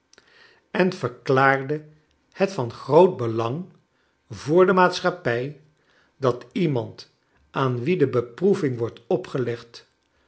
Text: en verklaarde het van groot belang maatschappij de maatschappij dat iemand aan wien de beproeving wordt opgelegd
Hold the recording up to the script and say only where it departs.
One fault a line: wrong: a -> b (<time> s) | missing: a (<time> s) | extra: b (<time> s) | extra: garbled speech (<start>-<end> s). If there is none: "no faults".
wrong: maatschappij -> voor (4.3 s)